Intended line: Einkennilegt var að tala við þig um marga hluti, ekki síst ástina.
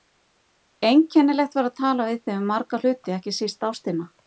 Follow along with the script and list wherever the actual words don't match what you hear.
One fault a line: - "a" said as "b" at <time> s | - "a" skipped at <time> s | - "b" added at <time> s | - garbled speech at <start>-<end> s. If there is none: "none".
none